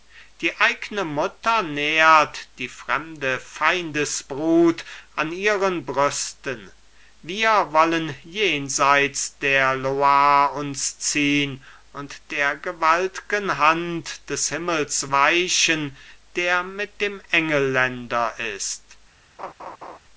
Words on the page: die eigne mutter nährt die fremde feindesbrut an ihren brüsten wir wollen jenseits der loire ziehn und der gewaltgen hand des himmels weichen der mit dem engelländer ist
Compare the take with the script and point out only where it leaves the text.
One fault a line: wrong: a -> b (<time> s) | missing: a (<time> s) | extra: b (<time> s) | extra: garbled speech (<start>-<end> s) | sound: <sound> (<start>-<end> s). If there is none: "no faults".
extra: uns (10.6 s)
sound: laugh (19.4-20.0 s)